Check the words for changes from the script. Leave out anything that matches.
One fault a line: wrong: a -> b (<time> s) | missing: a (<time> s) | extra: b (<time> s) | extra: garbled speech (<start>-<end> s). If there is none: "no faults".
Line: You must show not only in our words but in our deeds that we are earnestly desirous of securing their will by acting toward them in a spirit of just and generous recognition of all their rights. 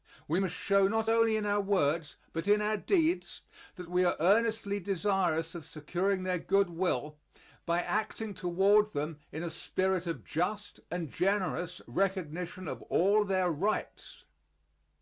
wrong: You -> We (0.3 s)
extra: good (6.4 s)